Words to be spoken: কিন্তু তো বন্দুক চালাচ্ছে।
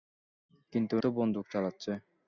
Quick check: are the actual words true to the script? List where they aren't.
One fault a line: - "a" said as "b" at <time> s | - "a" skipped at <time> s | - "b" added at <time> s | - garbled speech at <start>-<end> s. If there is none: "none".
none